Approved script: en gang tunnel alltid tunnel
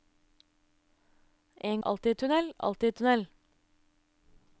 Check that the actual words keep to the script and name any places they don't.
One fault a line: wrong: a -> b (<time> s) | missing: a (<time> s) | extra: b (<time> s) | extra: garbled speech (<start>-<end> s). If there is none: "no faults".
wrong: gang -> alltid (1.8 s)